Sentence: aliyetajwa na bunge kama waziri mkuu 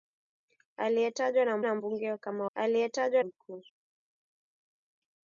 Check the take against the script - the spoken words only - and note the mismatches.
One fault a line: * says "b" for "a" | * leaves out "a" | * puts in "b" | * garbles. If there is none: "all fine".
* puts in "na"
* says "aliyetajwa" for "waziri"